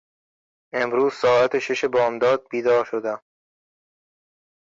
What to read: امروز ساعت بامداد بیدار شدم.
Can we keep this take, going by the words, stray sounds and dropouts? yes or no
no